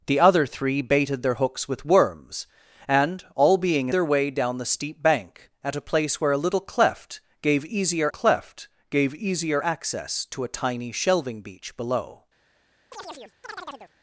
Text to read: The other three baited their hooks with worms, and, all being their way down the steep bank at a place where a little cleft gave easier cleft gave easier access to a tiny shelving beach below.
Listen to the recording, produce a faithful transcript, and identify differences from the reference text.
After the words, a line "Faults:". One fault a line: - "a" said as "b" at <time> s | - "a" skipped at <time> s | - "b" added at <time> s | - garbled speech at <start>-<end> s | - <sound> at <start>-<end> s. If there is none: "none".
The other three baited their hooks with worms, and, all being their way down the steep bank at a place where a little cleft gave easier cleft gave easier access to a tiny shelving beach below.
Faults:
- chirp at 12.9-13.9 s